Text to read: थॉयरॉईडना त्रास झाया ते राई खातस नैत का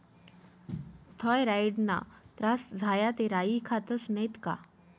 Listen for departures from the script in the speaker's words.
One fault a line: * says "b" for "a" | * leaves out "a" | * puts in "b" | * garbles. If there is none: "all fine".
all fine